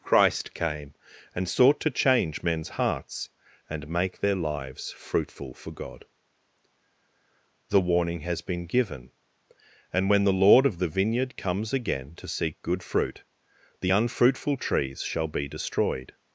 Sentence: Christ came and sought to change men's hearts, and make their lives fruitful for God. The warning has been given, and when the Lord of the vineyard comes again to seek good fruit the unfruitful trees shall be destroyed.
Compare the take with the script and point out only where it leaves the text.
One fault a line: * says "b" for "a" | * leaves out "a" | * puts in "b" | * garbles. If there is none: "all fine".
all fine